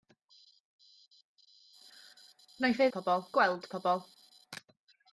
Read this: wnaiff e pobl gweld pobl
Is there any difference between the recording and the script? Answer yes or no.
no